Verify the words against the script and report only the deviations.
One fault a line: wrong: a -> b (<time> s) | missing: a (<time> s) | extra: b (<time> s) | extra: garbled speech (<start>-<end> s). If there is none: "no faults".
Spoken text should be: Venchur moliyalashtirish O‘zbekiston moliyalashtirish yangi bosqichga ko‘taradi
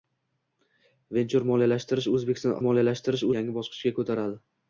no faults